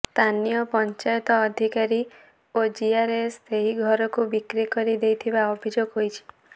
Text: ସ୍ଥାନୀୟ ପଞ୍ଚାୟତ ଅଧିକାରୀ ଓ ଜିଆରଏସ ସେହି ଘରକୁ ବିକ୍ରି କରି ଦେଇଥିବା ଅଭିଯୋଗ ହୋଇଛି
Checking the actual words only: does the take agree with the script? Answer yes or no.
yes